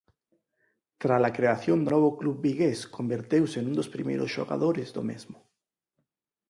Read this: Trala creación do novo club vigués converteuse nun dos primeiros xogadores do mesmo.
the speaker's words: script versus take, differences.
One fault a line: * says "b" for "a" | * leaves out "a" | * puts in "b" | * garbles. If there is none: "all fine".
all fine